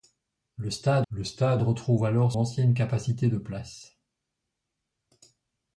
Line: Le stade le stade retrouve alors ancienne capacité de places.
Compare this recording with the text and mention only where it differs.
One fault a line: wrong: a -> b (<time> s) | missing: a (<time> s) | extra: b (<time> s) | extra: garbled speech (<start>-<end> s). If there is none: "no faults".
no faults